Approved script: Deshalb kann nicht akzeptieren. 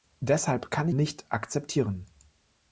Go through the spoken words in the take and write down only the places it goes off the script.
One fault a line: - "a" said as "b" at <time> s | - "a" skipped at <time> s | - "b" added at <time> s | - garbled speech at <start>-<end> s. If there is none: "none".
none